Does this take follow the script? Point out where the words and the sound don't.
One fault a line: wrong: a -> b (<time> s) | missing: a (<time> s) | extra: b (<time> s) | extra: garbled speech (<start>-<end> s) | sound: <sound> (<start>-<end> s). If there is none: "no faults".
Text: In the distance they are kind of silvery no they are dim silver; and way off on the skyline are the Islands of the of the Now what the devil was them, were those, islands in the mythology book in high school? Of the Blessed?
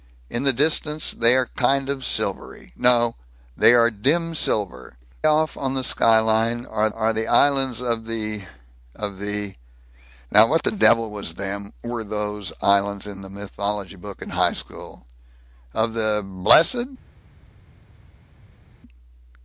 missing: and way (5.0 s)
extra: are (6.9 s)